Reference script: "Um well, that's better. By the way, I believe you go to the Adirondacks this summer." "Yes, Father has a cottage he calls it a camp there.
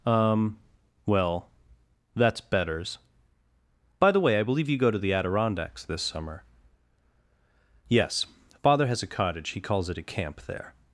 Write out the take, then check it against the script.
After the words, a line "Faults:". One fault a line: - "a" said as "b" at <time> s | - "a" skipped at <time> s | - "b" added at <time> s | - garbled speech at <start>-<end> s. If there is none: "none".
"Um well, that's betters. By the way, I believe you go to the Adirondacks this summer." "Yes, Father has a cottage he calls it a camp there.
Faults:
- "better" said as "betters" at 2.4 s